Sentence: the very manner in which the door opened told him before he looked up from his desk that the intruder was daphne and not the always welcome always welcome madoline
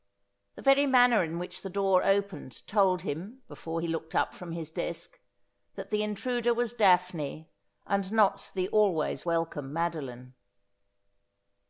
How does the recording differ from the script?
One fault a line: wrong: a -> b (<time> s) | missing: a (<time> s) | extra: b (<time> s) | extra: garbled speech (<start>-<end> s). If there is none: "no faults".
missing: always welcome (9.7 s)